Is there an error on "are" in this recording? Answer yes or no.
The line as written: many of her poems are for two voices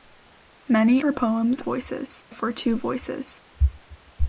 yes